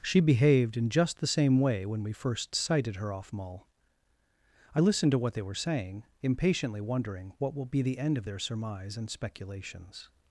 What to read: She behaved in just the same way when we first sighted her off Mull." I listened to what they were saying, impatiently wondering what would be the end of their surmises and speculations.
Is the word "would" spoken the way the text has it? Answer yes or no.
no